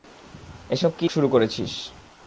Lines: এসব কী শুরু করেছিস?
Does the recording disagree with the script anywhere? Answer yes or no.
no